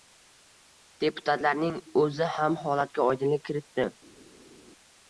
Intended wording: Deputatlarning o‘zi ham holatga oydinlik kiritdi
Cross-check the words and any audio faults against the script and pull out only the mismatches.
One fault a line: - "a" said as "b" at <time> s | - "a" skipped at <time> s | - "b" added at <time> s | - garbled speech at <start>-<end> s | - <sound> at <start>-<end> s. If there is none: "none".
none